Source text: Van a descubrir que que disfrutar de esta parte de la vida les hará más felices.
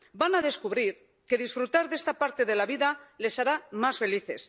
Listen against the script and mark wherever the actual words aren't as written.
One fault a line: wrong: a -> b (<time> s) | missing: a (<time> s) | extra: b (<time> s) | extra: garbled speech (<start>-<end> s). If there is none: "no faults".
missing: que (1.4 s)